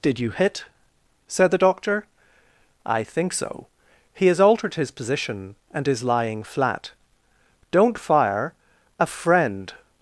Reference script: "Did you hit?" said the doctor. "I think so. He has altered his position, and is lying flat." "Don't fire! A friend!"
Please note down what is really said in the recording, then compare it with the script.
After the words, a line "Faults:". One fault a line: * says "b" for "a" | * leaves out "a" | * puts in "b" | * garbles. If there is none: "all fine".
"Did you hit?" said the doctor. "I think so. He has altered his position, and is lying flat." "Don't fire! A friend!"
Faults:
all fine